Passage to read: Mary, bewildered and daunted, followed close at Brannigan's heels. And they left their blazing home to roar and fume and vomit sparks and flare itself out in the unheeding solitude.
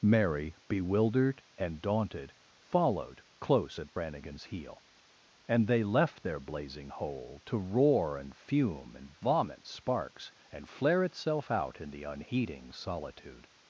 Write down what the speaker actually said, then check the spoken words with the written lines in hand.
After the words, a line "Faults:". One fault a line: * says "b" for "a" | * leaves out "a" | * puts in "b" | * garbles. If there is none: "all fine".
Mary, bewildered and daunted, followed close at Brannigan's heel. And they left their blazing hole to roar and fume and vomit sparks and flare itself out in the unheeding solitude.
Faults:
* says "heel" for "heels"
* says "hole" for "home"